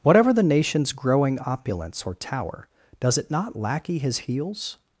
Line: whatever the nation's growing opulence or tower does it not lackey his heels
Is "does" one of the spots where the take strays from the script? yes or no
no